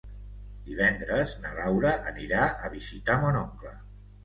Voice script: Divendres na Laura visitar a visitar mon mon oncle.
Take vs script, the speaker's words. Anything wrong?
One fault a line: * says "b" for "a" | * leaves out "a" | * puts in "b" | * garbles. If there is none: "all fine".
* says "anirà" for "visitar"
* leaves out "mon"